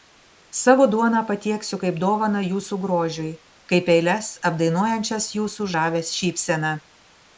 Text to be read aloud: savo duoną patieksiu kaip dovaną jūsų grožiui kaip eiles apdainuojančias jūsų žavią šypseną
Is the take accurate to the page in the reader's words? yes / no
yes